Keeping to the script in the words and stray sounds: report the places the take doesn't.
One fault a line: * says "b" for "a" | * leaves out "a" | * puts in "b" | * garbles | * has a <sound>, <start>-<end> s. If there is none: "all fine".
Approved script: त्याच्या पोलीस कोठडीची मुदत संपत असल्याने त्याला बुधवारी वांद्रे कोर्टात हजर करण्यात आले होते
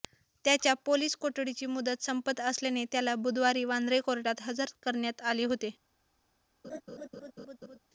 * has a laugh, 6.6-7.8 s